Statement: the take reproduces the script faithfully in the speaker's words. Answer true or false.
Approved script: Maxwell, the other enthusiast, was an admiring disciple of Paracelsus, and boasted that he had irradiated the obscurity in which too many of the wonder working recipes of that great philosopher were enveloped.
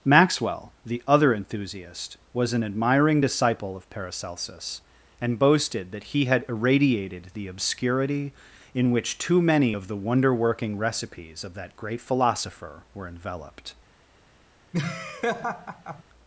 true